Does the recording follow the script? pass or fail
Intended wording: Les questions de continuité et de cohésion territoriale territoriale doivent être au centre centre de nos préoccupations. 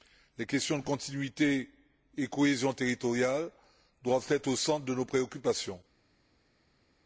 fail